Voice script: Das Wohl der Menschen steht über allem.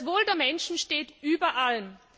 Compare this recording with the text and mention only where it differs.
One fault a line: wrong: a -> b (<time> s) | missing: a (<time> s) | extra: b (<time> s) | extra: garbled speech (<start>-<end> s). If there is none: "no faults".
no faults